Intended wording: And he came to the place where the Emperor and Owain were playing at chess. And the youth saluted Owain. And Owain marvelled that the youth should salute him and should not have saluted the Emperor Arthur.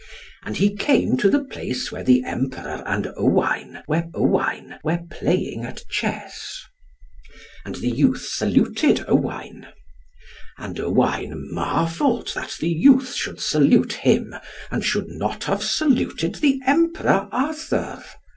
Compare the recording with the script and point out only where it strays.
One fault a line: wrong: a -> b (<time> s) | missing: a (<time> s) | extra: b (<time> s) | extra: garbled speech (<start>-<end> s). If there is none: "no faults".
extra: Owain were (4.1 s)